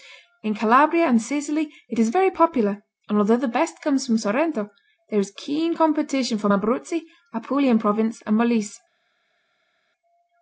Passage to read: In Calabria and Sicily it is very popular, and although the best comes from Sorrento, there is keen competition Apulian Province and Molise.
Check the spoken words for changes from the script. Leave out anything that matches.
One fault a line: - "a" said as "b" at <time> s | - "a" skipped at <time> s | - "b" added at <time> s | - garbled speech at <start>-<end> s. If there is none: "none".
- "from Abruzzi" added at 6.4 s